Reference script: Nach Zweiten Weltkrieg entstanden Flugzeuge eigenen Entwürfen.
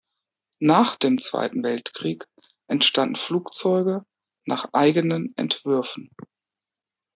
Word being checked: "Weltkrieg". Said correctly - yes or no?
yes